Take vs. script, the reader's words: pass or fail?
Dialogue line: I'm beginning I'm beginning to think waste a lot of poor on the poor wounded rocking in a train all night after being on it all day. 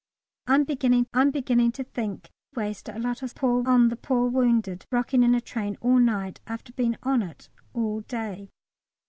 pass